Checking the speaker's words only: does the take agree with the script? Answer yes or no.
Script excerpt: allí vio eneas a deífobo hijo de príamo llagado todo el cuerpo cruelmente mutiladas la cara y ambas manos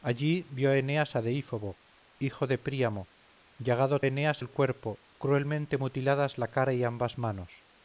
no